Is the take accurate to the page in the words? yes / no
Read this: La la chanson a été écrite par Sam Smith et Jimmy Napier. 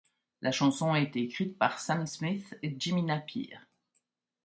no